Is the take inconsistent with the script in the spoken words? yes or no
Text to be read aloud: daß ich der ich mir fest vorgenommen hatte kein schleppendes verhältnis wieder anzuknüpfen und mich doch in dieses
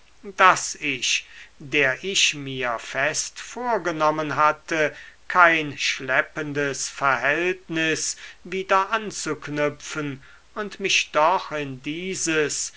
no